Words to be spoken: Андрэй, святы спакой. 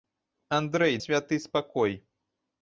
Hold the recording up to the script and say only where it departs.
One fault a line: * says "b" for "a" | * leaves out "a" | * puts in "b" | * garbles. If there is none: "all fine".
all fine